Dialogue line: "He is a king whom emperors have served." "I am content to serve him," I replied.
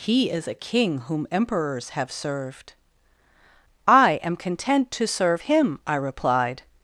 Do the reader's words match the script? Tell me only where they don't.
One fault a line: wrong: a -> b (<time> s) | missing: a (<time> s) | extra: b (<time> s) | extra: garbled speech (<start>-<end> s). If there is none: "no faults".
no faults